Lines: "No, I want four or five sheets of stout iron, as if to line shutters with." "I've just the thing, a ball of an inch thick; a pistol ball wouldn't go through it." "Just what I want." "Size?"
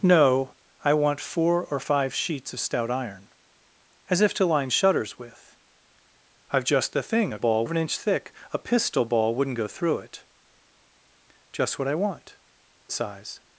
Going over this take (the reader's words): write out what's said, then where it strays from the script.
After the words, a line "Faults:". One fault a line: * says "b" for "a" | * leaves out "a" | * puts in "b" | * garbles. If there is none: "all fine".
"No, I want four or five sheets of stout iron, as if to line shutters with." "I've just the thing, a ball of an inch thick; a pistol ball wouldn't go through it." "Just what I want." "Size?"
Faults:
all fine